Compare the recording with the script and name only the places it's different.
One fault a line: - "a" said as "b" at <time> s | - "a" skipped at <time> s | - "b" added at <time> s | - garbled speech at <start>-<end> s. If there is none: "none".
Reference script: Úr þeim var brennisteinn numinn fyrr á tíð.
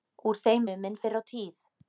- "var brennisteinn" skipped at 0.7 s